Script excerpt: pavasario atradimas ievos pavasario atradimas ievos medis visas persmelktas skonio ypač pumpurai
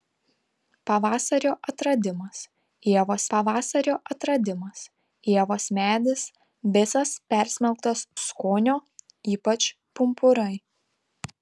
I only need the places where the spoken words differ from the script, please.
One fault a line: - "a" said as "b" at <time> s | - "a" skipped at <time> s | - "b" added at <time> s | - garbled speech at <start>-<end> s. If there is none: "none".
none